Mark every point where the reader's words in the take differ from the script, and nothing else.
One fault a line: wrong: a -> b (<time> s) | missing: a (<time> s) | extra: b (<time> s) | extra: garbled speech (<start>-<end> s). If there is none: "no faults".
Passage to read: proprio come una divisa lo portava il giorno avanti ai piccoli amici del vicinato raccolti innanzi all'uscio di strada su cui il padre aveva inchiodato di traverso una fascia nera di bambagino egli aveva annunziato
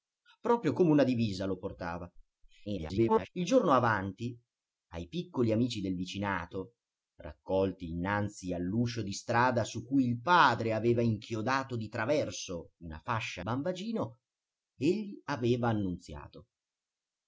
extra: garbled speech (2.7-3.3 s)
missing: nera di (13.4 s)